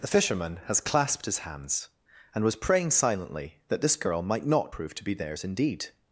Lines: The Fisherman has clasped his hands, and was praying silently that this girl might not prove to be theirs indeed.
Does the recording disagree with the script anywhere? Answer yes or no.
no